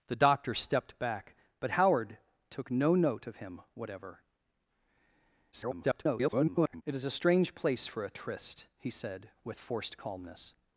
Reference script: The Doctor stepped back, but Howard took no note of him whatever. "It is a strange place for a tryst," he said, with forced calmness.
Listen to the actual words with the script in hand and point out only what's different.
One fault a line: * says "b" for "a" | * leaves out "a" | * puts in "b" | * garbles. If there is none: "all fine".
* garbles